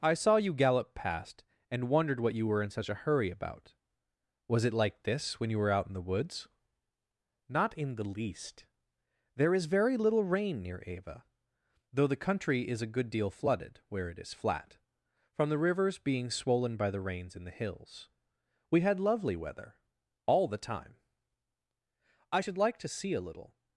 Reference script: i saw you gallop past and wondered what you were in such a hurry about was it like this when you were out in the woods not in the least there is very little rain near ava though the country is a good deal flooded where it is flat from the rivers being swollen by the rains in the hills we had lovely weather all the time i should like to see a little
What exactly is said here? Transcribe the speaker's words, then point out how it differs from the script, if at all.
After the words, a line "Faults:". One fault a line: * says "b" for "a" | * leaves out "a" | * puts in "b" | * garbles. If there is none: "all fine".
i saw you gallop past and wondered what you were in such a hurry about was it like this when you were out in the woods not in the least there is very little rain near ava though the country is a good deal flooded where it is flat from the rivers being swollen by the rains in the hills we had lovely weather all the time i should like to see a little
Faults:
all fine